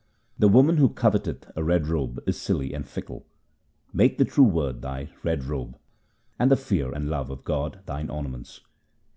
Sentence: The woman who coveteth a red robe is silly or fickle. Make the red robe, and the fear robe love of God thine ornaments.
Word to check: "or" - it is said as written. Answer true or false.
false